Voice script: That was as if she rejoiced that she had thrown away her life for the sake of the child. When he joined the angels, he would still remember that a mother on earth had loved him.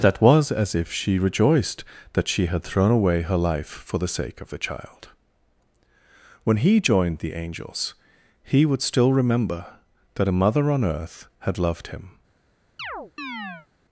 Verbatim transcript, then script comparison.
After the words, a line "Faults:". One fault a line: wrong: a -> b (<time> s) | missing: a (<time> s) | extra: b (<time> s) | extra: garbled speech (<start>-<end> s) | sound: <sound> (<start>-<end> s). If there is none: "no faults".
That was as if she rejoiced that she had thrown away her life for the sake of the child. When he joined the angels, he would still remember that a mother on earth had loved him.
Faults:
sound: chirp (12.8-13.7 s)